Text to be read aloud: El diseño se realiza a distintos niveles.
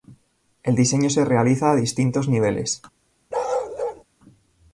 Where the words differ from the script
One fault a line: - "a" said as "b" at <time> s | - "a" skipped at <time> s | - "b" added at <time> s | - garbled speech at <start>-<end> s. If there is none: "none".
none